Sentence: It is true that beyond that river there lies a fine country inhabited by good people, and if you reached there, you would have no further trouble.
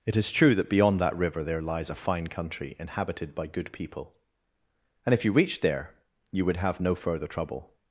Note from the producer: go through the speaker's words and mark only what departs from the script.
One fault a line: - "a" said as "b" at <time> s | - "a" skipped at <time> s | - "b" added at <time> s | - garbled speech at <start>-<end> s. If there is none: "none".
none